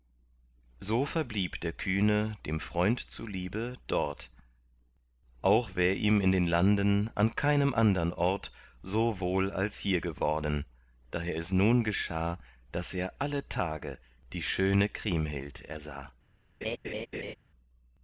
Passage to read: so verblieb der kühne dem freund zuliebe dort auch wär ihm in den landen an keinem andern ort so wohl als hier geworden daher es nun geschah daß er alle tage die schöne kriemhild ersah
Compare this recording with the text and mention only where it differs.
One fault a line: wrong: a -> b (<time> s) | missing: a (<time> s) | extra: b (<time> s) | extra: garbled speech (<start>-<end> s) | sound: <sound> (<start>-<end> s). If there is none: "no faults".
sound: laugh (16.6-17.4 s)